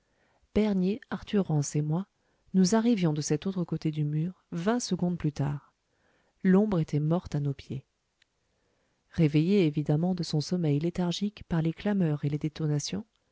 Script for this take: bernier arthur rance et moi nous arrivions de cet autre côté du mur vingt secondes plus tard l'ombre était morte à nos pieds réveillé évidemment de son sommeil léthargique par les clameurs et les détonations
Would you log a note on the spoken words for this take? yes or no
no